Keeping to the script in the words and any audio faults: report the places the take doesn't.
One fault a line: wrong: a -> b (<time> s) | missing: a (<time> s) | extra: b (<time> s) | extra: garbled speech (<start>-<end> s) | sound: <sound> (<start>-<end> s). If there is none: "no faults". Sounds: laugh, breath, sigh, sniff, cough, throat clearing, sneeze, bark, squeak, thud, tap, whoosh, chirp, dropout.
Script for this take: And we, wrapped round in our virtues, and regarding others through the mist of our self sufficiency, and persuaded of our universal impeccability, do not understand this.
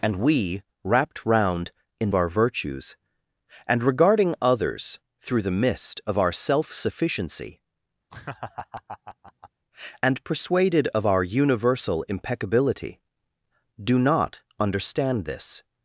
sound: laugh (8.1-9.5 s)